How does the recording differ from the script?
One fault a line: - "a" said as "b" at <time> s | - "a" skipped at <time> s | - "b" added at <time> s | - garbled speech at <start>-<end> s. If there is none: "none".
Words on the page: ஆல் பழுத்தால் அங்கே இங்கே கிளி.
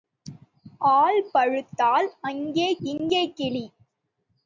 none